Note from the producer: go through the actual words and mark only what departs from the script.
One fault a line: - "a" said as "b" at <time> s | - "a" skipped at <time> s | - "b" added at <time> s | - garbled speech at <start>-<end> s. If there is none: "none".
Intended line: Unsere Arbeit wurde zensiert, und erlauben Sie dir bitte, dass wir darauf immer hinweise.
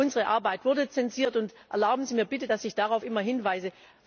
- "dir" said as "mir" at 2.1 s
- "wir" said as "ich" at 2.6 s